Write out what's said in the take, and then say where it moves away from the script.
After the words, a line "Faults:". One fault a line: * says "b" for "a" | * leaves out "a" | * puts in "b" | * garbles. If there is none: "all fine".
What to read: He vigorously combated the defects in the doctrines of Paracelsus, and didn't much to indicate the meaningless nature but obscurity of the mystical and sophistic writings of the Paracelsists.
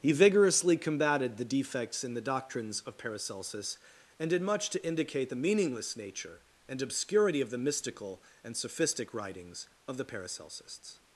He vigorously combated the defects in the doctrines of Paracelsus, and did much to indicate the meaningless nature and obscurity of the mystical and sophistic writings of the Paracelsists.
Faults:
* says "did" for "didn't"
* says "and" for "but"